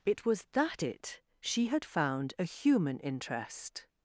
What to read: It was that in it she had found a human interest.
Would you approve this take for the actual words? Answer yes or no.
no